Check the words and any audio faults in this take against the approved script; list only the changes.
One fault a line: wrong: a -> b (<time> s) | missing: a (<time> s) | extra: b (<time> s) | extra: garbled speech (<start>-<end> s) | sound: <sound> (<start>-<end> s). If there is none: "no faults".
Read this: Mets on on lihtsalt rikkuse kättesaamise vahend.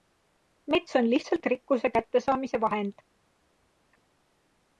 missing: on (1.1 s)